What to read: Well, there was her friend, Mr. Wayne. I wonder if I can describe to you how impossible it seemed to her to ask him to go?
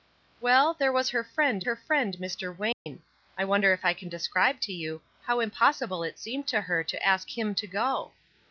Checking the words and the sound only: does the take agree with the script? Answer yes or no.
no